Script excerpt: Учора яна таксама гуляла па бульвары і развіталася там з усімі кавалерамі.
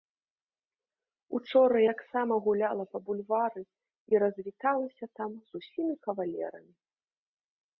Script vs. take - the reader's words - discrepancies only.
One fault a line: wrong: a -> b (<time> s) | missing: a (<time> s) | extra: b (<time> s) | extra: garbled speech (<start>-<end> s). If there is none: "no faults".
missing: яна (1.8 s)